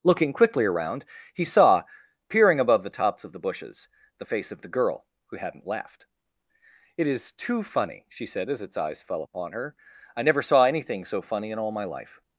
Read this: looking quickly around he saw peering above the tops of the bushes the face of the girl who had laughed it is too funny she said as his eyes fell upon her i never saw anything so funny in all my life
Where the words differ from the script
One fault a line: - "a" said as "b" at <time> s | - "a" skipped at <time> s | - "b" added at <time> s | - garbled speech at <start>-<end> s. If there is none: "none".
- "had" said as "hadn't" at 5.4 s
- "his" said as "its" at 8.6 s